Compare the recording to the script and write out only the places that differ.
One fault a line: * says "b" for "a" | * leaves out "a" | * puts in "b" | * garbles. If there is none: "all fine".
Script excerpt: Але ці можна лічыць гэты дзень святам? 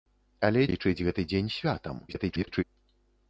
* leaves out "ці можна"
* garbles